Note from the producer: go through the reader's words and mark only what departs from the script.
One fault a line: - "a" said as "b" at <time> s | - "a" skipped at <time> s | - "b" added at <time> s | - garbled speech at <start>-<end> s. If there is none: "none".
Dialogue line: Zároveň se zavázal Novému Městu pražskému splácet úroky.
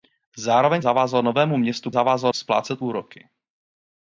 - "se" skipped at 0.8 s
- "pražskému" said as "zavázal" at 1.9 s